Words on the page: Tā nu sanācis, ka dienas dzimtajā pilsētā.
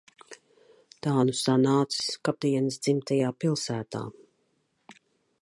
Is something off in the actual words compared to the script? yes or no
no